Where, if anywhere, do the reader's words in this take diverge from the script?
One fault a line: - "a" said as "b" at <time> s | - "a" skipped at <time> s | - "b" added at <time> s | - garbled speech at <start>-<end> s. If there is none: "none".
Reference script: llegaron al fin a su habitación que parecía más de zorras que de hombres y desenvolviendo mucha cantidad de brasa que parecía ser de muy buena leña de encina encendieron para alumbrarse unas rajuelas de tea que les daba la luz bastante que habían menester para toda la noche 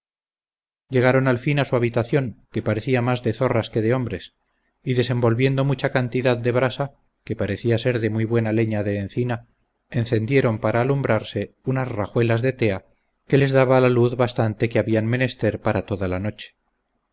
none